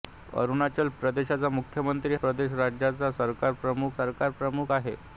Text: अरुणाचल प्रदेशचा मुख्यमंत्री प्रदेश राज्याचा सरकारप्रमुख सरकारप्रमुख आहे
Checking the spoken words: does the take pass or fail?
pass